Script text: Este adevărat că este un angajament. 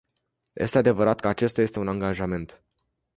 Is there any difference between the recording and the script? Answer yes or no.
yes